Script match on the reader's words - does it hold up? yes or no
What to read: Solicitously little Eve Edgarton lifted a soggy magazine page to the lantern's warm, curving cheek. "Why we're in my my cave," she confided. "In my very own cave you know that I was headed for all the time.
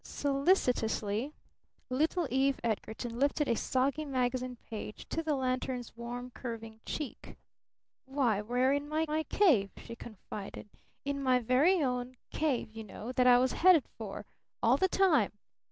yes